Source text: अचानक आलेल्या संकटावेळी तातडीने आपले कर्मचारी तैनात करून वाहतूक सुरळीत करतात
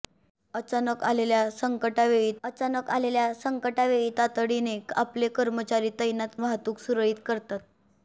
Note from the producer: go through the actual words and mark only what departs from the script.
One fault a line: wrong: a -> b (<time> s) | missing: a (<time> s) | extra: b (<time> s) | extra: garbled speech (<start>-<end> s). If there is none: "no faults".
extra: अचानक आलेल्या संकटावेळी (2.4 s)
missing: करून (6.4 s)